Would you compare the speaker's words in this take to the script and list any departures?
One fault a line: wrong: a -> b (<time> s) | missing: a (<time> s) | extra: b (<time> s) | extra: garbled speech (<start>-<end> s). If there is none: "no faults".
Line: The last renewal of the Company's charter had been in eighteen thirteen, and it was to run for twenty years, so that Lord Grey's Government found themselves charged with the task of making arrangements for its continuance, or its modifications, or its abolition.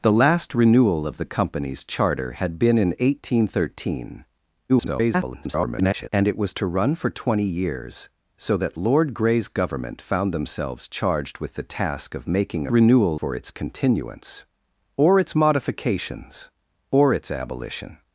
extra: garbled speech (4.7-6.1 s)
wrong: arrangements -> renewal (12.7 s)